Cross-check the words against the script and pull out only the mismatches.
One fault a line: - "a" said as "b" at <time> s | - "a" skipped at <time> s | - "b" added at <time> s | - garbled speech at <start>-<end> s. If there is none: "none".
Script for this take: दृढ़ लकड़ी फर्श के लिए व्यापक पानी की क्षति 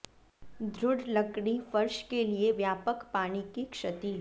none